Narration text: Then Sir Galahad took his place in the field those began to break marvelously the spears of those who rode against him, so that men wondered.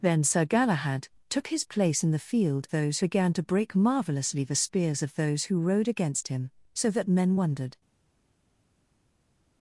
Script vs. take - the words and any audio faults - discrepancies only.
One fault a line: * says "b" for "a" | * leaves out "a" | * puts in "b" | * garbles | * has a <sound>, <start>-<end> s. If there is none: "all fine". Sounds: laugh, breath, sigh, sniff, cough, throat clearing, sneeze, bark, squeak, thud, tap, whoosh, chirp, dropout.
all fine